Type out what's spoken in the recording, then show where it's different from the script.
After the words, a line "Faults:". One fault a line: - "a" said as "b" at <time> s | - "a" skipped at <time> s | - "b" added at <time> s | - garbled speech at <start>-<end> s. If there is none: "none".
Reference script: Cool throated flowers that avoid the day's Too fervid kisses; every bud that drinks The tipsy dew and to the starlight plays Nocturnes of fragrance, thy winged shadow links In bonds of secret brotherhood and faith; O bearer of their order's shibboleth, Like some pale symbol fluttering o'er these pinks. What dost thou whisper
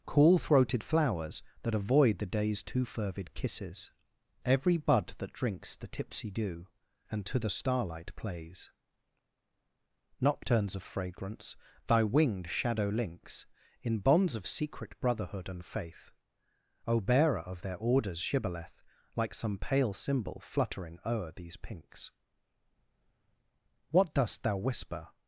Cool throated flowers that avoid the day's Too fervid kisses; every bud that drinks The tipsy dew and to the starlight plays Nocturnes of fragrance, thy winged shadow links In bonds of secret brotherhood and faith; O bearer of their order's shibboleth, Like some pale symbol fluttering o'er these pinks. What dost thou whisper
Faults:
none